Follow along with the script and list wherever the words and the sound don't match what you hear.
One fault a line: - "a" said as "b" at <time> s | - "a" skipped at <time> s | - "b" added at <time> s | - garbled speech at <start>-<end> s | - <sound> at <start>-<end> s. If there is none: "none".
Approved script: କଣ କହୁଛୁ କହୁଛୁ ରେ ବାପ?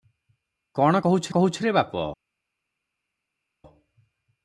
none